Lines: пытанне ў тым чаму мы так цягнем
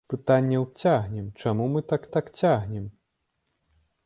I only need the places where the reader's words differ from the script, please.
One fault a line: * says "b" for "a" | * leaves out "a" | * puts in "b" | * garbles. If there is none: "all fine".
* says "цягнем" for "тым"
* puts in "так"